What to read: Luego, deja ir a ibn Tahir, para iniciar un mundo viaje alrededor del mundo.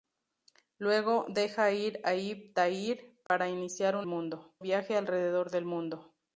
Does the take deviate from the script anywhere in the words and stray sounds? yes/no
yes